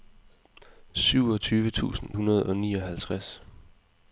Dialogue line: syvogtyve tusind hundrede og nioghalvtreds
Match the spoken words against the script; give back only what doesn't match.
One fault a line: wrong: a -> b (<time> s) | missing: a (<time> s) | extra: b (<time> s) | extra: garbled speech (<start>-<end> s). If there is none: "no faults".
no faults